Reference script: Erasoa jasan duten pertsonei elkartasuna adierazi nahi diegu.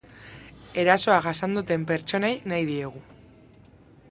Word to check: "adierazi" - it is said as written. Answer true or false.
false